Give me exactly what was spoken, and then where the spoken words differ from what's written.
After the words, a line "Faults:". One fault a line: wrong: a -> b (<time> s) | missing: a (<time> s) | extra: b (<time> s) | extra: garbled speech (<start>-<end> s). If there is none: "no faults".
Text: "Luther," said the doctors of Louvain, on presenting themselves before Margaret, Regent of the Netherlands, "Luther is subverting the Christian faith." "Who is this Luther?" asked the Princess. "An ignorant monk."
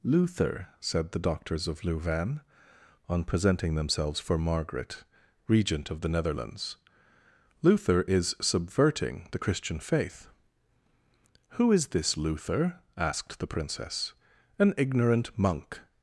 "Luther," said the doctors of Louvain, on presenting themselves for Margaret, Regent of the Netherlands, "Luther is subverting the Christian faith." "Who is this Luther?" asked the Princess. "An ignorant monk."
Faults:
wrong: before -> for (4.2 s)